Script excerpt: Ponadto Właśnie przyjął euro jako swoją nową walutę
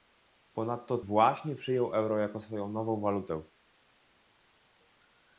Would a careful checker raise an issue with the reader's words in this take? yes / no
no